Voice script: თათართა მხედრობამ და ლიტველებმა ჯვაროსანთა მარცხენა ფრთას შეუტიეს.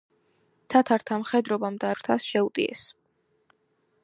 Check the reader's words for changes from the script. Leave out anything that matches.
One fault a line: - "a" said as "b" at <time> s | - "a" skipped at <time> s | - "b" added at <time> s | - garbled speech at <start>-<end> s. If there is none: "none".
- "ლიტველებმა ჯვაროსანთა მარცხენა" skipped at 1.9 s